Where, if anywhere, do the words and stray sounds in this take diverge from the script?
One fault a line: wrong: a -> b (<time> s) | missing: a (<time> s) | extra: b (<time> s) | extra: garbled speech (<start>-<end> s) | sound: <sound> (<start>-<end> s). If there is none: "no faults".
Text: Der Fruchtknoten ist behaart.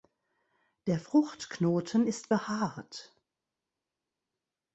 no faults